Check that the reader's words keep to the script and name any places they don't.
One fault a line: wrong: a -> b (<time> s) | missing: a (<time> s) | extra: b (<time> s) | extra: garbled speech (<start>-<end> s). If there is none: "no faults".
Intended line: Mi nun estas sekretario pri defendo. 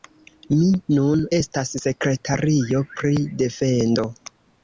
no faults